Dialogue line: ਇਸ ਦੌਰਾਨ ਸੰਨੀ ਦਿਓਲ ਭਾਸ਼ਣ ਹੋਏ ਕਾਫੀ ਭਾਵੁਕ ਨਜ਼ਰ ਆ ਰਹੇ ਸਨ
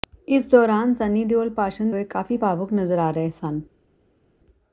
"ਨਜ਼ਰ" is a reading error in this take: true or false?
false